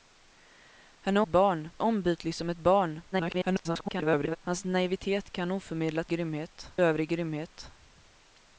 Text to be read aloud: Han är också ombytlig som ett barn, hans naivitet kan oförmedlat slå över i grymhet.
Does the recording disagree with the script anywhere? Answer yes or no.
yes